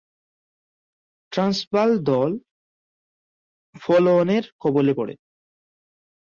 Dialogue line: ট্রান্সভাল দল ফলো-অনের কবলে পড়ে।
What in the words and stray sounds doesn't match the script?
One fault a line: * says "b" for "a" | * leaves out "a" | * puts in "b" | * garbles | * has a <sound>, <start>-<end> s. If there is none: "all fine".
all fine